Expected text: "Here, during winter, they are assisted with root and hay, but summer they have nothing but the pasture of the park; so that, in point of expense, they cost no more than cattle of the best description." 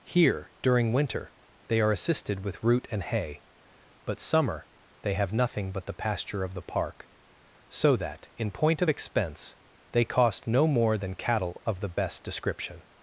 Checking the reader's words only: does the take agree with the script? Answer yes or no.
yes